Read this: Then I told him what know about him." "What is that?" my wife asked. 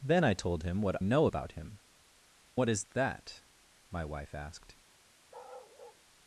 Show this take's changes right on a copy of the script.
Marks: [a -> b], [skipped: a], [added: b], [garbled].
Then I told him what know about him." "What is that?" my wife asked.